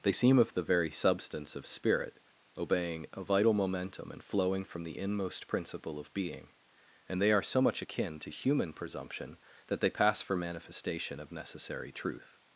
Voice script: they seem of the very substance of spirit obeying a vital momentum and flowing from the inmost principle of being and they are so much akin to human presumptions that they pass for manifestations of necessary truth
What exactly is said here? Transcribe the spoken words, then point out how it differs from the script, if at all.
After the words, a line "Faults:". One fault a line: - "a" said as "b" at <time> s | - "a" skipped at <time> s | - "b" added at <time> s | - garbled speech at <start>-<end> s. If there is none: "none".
they seem of the very substance of spirit obeying a vital momentum and flowing from the inmost principle of being and they are so much akin to human presumption that they pass for manifestation of necessary truth
Faults:
- "presumptions" said as "presumption" at 8.7 s
- "manifestations" said as "manifestation" at 10.3 s